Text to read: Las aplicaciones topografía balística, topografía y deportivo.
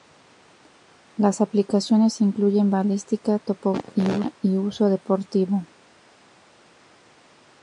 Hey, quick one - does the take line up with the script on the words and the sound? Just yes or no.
no